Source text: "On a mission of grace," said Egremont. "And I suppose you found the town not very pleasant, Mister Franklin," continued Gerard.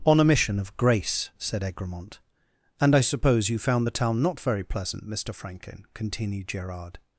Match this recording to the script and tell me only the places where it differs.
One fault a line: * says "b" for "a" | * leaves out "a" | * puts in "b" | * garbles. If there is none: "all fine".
all fine